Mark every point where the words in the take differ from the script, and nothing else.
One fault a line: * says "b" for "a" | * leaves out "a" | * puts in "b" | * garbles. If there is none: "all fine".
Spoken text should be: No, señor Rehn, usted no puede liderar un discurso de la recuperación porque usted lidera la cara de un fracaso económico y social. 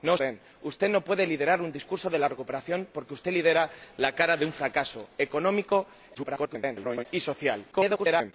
* leaves out "señor"
* garbles
* garbles